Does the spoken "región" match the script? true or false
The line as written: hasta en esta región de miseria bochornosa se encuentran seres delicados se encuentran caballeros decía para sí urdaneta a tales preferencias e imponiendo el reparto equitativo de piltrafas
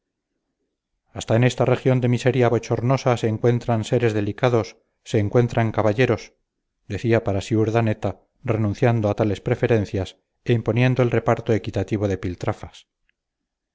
true